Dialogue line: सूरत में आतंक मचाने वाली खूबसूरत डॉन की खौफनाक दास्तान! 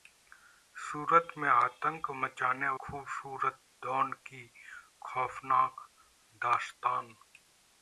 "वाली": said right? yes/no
no